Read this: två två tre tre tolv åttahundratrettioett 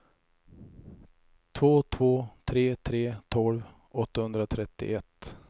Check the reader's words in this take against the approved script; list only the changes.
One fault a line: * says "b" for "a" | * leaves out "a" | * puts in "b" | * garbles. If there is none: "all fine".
all fine